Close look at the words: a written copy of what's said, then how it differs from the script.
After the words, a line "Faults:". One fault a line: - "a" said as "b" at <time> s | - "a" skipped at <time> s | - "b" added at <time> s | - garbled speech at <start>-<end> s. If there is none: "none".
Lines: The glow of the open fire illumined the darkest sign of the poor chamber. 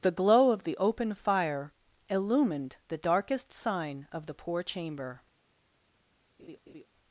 The glow of the open fire illumined the darkest sign of the poor chamber.
Faults:
none